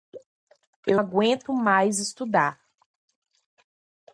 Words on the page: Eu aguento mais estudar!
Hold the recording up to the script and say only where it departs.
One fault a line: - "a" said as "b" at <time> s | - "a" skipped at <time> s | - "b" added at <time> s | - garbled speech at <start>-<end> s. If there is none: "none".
none